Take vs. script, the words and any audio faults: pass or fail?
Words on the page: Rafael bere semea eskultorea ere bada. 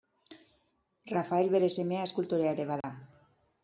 fail